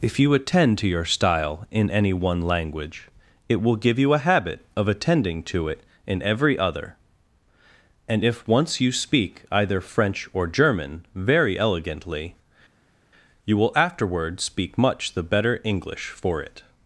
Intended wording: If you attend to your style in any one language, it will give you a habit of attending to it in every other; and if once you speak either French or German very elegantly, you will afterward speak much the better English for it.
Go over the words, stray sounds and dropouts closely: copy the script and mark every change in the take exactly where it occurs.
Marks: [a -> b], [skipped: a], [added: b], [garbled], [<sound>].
If you attend to your style in any one language, it will give you a habit of attending to it in every other; and if once you speak either French or German very elegantly, you will afterward speak much the better English for it.